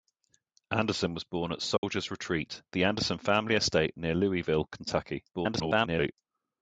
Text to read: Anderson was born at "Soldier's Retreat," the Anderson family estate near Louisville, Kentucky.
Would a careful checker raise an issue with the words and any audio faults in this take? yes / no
yes